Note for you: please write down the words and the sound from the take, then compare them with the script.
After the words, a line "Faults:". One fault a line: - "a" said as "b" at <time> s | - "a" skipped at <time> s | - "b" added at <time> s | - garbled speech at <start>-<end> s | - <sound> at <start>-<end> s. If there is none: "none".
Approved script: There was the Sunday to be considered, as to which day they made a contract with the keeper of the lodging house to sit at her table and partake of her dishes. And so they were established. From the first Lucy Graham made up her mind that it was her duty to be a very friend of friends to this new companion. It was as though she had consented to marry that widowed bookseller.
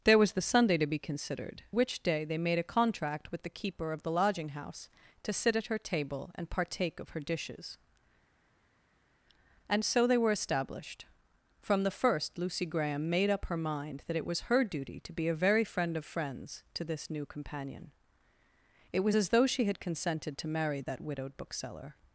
There was the Sunday to be considered, which day they made a contract with the keeper of the lodging house to sit at her table and partake of her dishes. And so they were established. From the first Lucy Graham made up her mind that it was her duty to be a very friend of friends to this new companion. It was as though she had consented to marry that widowed bookseller.
Faults:
- "as to" skipped at 1.6 s